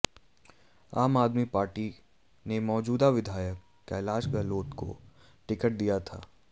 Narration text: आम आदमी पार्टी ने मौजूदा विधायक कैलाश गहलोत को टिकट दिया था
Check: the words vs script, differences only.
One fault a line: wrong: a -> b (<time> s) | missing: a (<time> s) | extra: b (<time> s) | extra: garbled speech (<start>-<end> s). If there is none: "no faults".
no faults